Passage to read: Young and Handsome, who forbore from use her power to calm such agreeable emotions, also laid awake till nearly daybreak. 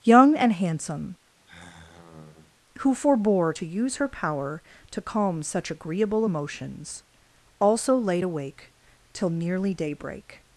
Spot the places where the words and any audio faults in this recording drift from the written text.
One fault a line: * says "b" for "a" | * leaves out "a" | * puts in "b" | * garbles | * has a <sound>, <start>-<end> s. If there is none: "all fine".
* has a sigh, 1.4-2.5 s
* says "to" for "from"